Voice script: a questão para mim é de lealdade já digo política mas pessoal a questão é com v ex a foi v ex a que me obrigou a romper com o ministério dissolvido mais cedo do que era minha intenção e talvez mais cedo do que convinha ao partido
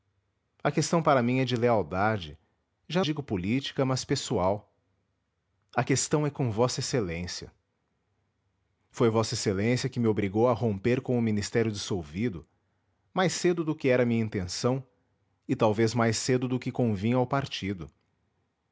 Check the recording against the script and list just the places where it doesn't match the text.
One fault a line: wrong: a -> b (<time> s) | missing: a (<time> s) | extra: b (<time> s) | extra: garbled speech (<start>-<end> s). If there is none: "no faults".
no faults